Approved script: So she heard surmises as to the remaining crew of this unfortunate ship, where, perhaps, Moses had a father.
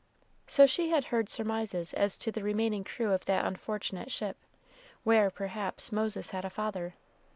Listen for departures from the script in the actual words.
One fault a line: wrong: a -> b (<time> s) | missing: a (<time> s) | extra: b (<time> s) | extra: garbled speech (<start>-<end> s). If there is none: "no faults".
extra: had (0.9 s)
wrong: this -> that (3.2 s)